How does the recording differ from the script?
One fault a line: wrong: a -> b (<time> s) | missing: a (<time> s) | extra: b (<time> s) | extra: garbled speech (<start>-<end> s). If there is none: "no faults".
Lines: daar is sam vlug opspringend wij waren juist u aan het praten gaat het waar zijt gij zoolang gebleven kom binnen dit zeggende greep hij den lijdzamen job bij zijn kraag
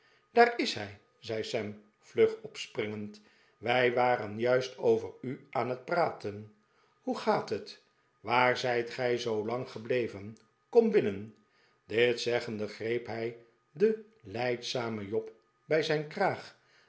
extra: hij zei (0.7 s)
extra: over (4.8 s)
extra: hoe (7.0 s)